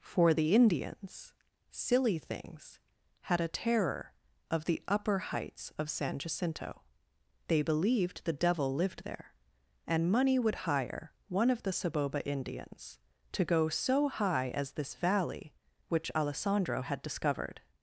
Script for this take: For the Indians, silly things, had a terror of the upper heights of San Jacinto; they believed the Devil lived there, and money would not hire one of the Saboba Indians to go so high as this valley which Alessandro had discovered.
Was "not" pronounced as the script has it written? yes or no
no